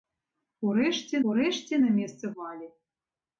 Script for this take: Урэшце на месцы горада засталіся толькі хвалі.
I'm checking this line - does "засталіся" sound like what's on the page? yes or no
no